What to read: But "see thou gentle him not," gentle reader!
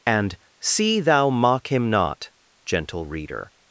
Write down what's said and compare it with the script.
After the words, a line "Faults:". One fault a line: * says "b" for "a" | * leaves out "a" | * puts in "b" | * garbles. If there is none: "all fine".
And "see thou mock him not," gentle reader!
Faults:
* says "And" for "But"
* says "mock" for "gentle"